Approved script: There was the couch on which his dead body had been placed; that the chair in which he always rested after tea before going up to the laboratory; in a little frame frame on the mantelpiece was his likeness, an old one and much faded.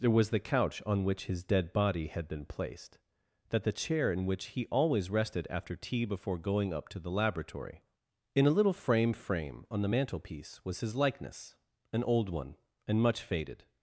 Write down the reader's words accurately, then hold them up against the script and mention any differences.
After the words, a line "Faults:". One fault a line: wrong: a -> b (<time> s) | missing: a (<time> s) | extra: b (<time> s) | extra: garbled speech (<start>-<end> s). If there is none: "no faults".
There was the couch on which his dead body had been placed; that the chair in which he always rested after tea before going up to the laboratory; in a little frame frame on the mantelpiece was his likeness, an old one and much faded.
Faults:
no faults